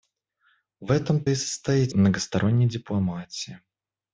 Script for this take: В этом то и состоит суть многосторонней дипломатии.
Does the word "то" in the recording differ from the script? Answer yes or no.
yes